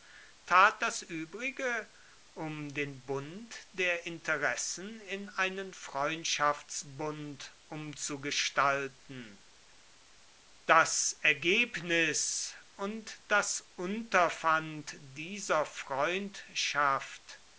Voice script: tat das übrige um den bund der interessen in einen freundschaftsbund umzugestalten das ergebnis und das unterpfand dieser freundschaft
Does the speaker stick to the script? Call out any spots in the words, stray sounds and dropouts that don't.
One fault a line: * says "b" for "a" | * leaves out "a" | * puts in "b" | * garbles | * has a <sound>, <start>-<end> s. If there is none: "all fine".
all fine